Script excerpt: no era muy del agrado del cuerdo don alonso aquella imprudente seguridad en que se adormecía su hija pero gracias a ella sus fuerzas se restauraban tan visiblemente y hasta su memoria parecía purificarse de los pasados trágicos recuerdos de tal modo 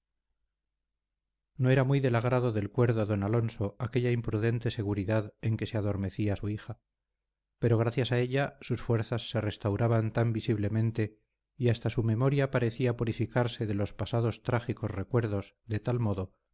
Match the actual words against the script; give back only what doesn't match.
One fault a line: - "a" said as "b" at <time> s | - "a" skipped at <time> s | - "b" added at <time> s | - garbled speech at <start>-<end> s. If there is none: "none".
none